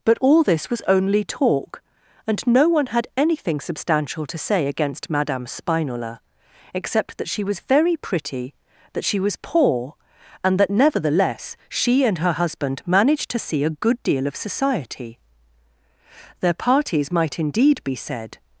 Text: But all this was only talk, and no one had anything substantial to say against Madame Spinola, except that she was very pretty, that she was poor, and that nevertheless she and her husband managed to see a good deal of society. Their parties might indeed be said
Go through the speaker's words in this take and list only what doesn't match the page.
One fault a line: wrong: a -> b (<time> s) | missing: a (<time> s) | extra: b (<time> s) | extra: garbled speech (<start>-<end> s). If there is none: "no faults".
no faults